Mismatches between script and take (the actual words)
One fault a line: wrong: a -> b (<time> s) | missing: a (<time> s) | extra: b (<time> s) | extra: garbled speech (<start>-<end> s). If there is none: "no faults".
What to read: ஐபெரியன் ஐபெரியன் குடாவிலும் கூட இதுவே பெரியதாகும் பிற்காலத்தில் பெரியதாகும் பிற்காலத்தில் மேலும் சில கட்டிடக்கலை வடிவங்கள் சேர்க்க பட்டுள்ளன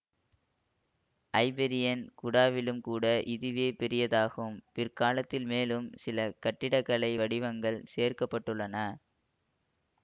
missing: ஐபெரியன் (2.0 s)
missing: பெரியதாகும் பிற்காலத்தில் (5.5 s)